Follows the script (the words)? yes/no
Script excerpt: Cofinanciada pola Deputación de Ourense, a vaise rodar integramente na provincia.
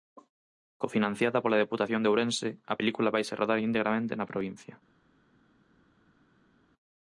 no